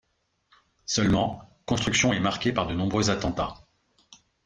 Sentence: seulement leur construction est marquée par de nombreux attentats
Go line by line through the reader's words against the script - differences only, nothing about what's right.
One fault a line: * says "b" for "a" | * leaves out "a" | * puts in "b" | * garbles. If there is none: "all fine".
* leaves out "leur"